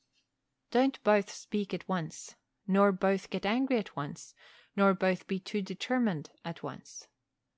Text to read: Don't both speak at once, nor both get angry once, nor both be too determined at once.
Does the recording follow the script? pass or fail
fail